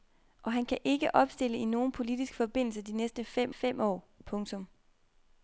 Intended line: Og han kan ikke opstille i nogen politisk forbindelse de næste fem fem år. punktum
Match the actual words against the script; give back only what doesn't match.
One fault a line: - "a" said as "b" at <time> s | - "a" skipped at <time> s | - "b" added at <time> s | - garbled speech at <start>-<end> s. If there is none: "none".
none